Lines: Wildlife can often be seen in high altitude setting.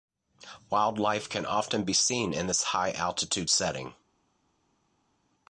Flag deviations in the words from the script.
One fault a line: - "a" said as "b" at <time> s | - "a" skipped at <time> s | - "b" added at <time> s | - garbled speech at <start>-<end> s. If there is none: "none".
- "this" added at 2.5 s